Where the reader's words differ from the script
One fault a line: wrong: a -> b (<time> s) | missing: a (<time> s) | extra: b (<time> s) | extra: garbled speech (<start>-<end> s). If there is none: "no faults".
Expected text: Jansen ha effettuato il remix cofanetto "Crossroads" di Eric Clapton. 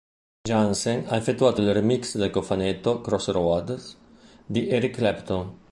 extra: del (2.1 s)